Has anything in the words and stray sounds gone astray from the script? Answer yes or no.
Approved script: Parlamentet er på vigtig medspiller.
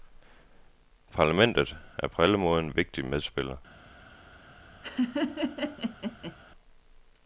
yes